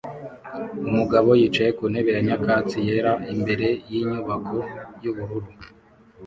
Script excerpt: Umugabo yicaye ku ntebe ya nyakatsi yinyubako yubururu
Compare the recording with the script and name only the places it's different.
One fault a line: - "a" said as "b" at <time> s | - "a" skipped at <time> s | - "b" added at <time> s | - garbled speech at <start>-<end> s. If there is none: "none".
- "yera imbere" added at 2.9 s